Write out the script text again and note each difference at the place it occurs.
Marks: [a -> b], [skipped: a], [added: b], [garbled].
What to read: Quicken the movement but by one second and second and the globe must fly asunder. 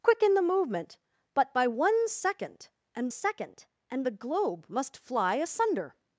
Quicken the movement but by one second and second and the globe must fly asunder.